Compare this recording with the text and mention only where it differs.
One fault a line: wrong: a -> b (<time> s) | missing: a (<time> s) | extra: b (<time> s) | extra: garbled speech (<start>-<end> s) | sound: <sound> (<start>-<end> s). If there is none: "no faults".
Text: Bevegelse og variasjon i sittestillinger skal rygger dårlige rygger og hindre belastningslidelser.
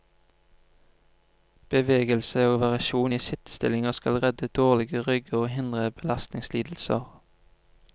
wrong: rygger -> redde (4.2 s)